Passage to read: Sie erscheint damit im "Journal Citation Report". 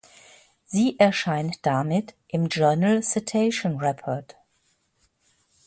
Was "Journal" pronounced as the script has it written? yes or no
yes